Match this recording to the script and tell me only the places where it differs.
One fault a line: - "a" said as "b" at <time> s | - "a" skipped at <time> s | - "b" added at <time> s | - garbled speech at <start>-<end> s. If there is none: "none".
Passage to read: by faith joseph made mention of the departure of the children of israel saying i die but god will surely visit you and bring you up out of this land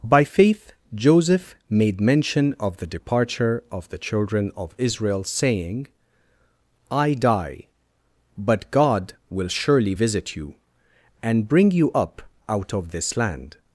none